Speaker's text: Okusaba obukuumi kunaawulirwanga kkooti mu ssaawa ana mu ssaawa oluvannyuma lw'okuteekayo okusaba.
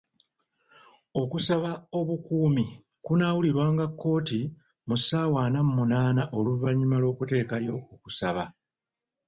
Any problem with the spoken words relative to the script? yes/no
yes